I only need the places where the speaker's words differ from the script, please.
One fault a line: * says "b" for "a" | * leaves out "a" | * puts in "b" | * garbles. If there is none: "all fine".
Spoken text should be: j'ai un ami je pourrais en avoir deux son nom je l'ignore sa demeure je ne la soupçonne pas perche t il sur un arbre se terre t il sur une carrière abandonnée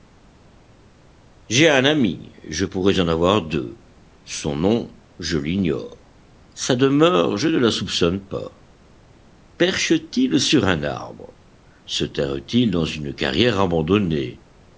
* says "dans" for "sur"